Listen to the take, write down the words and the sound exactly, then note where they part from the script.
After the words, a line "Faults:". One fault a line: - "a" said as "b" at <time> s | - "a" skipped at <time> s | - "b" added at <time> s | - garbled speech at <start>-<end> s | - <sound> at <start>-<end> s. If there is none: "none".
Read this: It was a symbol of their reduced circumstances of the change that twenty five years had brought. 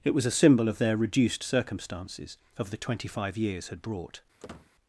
It was a symbol of their reduced circumstances of the twenty five years had brought.
Faults:
- "change that" skipped at 2.8 s
- squeak at 4.4-4.7 s